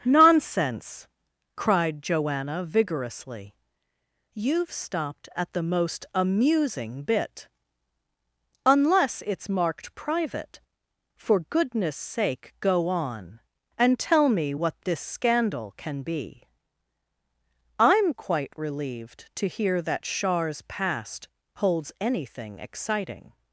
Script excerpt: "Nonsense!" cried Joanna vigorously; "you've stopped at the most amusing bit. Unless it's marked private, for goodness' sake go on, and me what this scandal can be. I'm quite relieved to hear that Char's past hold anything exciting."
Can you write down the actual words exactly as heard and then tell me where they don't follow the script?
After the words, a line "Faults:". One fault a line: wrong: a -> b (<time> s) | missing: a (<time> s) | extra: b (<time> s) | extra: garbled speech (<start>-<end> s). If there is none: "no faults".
"Nonsense!" cried Joanna vigorously; "you've stopped at the most amusing bit. Unless it's marked private, for goodness' sake go on, and tell me what this scandal can be. I'm quite relieved to hear that Char's past holds anything exciting."
Faults:
extra: tell (14.0 s)
wrong: hold -> holds (21.5 s)